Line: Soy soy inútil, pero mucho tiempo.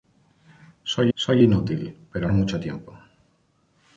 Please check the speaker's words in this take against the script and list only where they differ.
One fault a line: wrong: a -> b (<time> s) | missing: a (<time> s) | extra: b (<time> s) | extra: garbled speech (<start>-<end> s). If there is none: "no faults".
no faults